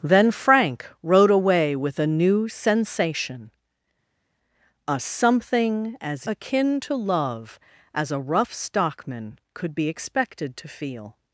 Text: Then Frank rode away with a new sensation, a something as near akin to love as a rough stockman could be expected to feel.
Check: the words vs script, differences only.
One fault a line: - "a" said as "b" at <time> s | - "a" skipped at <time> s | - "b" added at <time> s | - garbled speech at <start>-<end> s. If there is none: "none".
- "near" skipped at 6.3 s